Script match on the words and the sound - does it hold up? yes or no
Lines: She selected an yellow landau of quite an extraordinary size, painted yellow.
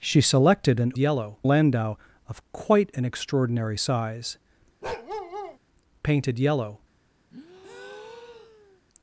no